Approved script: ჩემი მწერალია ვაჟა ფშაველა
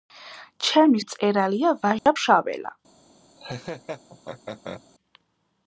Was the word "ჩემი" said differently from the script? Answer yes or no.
no